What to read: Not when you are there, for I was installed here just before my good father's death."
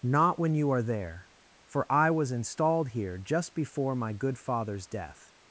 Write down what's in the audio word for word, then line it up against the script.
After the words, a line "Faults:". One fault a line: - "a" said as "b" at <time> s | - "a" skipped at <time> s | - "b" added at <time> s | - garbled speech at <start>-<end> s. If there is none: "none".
Not when you are there, for I was installed here just before my good father's death."
Faults:
none